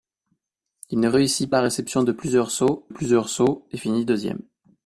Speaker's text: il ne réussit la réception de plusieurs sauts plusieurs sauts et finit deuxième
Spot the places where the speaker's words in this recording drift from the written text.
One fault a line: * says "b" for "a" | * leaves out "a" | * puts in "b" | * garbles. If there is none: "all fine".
all fine